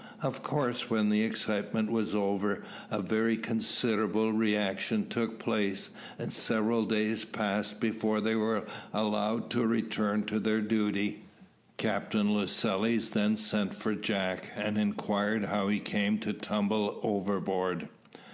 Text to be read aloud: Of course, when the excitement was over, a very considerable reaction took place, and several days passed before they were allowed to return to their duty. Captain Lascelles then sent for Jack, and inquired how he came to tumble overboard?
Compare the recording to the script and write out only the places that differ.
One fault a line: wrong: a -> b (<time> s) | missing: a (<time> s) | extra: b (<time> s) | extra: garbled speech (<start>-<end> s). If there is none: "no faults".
no faults